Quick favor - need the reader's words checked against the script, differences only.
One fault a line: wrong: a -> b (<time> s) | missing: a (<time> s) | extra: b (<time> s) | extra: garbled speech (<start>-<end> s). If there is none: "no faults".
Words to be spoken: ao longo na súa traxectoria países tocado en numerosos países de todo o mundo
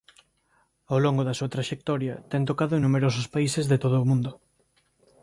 wrong: na -> da (1.3 s)
wrong: países -> ten (2.3 s)